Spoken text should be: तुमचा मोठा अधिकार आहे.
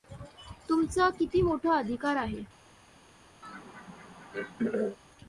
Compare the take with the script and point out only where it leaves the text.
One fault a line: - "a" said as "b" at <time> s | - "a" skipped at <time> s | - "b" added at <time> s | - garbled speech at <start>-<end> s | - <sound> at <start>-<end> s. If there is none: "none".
- "किती" added at 1.1 s
- throat clearing at 3.4-5.0 s